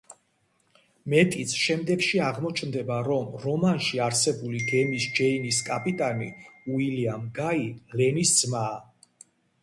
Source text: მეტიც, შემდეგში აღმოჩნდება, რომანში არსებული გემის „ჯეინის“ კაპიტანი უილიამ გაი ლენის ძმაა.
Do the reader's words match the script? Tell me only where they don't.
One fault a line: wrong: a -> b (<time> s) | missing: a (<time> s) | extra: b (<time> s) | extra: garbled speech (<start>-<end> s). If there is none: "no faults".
extra: რომ (3.1 s)